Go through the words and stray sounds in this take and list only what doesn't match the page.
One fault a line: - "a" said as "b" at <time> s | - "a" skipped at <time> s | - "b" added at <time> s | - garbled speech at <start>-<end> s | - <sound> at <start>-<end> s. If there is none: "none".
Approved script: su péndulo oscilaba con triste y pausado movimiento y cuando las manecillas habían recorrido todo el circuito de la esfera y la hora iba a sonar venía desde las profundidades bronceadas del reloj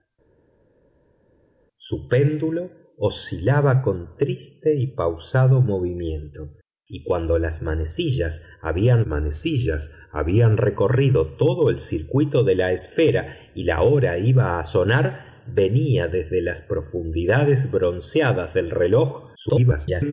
- "manecillas habían" added at 9.1 s
- garbled speech at 19.3-20.1 s